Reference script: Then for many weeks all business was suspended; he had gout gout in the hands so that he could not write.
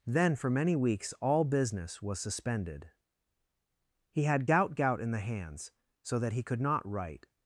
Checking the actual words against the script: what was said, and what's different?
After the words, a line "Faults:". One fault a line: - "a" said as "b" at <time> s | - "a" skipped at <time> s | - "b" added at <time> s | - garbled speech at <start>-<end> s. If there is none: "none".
Then for many weeks all business was suspended; he had gout gout in the hands so that he could not write.
Faults:
none